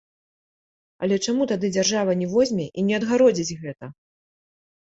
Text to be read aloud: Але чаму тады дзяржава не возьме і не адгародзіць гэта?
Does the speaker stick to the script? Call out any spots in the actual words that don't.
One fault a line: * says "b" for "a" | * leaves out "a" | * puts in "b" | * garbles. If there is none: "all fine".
all fine